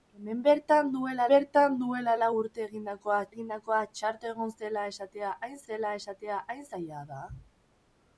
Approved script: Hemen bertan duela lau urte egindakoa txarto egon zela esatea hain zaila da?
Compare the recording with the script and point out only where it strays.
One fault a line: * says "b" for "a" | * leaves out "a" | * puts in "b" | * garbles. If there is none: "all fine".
* puts in "bertan duela"
* puts in "egindakoa"
* puts in "zela esatea hain"